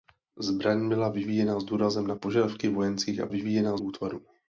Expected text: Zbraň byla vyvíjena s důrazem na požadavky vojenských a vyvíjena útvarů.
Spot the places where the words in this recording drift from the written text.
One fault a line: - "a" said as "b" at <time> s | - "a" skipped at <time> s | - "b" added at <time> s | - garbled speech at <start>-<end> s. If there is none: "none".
none